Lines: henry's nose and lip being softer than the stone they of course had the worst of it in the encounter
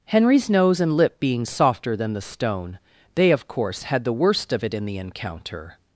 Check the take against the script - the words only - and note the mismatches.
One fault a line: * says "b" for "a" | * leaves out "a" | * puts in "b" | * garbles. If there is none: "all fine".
all fine